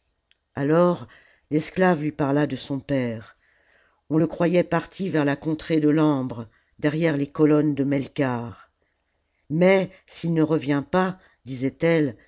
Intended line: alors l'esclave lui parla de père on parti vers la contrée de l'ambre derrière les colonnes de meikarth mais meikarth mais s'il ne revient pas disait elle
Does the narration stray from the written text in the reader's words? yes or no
yes